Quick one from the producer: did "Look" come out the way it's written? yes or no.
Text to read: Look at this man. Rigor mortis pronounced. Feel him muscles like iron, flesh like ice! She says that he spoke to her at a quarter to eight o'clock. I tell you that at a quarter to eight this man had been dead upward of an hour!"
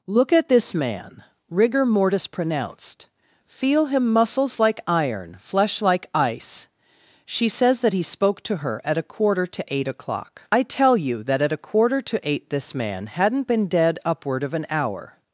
yes